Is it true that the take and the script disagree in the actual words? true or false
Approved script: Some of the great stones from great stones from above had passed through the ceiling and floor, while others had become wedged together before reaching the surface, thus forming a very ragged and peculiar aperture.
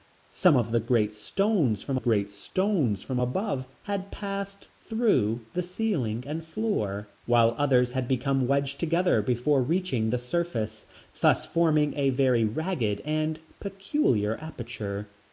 false